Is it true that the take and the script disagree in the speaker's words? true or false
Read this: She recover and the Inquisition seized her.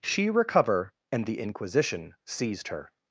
false